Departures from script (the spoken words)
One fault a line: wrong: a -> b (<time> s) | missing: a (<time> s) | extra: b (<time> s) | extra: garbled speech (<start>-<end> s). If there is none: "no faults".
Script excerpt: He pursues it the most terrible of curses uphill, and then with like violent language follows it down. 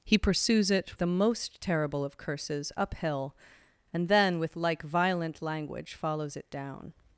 no faults